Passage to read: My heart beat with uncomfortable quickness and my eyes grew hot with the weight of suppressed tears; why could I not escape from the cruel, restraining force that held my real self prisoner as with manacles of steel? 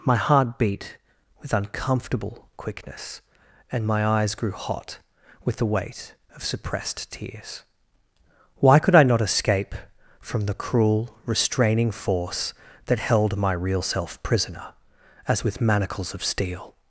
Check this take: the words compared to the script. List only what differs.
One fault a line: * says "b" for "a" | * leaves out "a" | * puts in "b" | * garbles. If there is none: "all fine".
all fine